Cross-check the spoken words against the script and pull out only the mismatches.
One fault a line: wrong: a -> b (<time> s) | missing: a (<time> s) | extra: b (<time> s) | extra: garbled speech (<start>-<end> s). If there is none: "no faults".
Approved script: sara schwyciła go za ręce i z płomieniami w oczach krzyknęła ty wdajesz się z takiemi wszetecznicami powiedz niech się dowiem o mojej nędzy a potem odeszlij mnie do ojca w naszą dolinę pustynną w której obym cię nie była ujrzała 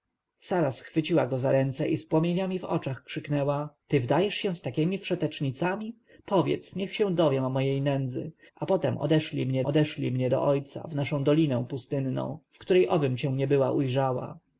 extra: odeszlij mnie (9.6 s)